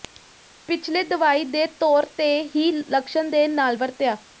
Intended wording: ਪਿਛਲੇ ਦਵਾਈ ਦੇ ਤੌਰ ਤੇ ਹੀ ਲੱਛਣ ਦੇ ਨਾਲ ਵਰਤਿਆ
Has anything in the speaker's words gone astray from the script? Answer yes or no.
no